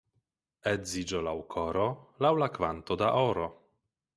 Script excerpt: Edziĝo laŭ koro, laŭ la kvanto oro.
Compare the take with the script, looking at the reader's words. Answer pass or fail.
fail